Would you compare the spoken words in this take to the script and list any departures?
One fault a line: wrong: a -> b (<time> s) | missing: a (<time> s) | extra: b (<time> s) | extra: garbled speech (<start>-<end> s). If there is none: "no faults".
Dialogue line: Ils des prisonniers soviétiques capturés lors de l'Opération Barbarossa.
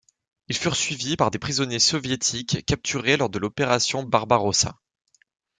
extra: furent suivis par (0.6 s)